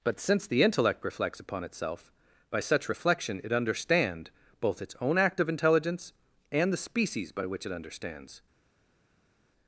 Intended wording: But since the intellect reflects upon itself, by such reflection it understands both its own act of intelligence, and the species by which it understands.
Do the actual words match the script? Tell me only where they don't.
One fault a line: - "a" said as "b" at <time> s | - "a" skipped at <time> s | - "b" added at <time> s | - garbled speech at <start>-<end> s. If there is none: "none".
- "understands" said as "understand" at 3.5 s